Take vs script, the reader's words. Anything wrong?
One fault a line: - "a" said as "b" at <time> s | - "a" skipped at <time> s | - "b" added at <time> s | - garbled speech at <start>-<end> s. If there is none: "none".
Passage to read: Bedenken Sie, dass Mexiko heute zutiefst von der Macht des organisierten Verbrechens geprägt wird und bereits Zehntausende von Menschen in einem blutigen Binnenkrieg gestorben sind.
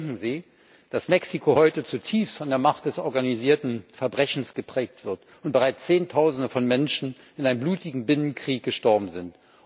none